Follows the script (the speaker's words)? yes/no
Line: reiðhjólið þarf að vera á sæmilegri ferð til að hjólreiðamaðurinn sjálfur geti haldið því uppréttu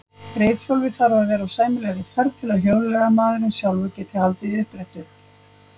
yes